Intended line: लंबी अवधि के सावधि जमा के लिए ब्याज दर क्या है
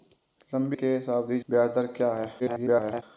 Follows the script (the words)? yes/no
no